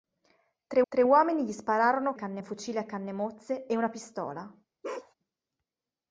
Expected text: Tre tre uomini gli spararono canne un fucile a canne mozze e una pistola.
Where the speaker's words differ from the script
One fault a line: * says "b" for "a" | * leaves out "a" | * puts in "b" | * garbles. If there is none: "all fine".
all fine